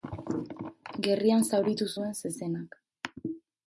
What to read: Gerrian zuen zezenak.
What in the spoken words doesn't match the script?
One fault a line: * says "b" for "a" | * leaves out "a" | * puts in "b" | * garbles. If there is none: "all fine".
* puts in "zauritu"